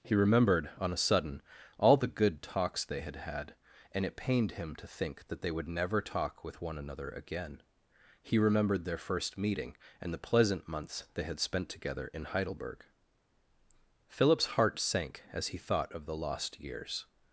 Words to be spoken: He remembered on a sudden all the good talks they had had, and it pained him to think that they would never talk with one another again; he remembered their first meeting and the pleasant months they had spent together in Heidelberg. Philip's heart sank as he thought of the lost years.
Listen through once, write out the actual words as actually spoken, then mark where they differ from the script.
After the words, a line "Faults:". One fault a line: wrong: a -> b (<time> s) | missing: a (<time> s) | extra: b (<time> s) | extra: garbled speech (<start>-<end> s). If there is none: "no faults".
He remembered on a sudden all the good talks they had had, and it pained him to think that they would never talk with one another again; he remembered their first meeting and the pleasant months they had spent together in Heidelberg. Philip's heart sank as he thought of the lost years.
Faults:
no faults